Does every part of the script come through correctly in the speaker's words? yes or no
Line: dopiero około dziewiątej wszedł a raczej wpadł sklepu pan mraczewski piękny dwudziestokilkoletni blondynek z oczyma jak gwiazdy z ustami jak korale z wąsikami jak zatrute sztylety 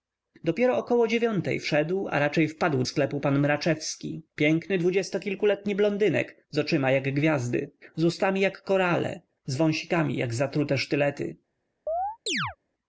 yes